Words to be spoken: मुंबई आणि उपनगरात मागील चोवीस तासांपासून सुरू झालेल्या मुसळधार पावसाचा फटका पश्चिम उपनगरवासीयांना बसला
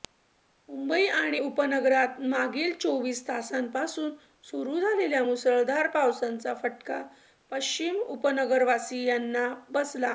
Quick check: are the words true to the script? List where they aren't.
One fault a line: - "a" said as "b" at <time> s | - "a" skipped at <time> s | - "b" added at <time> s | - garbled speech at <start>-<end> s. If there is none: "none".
none